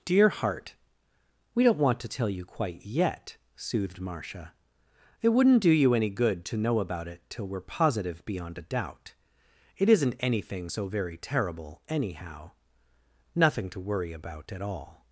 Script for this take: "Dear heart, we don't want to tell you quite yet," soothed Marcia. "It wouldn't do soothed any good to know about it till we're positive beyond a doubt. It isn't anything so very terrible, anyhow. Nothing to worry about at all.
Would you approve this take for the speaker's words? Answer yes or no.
no